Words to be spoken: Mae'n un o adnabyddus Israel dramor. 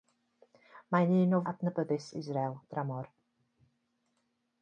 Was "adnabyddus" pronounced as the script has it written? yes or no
yes